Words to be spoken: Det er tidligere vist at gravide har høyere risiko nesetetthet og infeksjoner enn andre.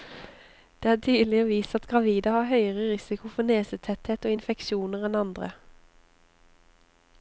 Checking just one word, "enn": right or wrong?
right